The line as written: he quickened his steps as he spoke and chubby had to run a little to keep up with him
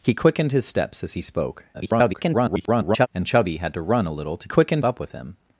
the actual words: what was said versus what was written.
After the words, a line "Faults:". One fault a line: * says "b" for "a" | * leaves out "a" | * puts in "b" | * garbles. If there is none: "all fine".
he quickened his steps as he spoke [garbled] and chubby had to run a little to quickened up with him
Faults:
* garbles
* says "quickened" for "keep"